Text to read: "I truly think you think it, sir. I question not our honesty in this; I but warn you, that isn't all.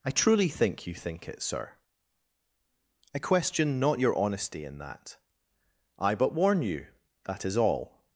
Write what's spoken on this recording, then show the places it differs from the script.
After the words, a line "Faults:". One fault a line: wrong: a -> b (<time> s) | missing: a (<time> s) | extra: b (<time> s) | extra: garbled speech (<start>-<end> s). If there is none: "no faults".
"I truly think you think it, sir. I question not your honesty in that; I but warn you, that is all.
Faults:
wrong: our -> your (4.0 s)
wrong: this -> that (4.8 s)
wrong: isn't -> is (7.5 s)